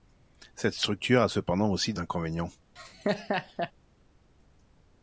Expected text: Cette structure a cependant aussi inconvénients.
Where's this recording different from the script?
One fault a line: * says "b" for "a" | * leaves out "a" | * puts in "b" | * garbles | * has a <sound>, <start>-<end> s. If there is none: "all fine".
* has a laugh, 2.8-3.7 s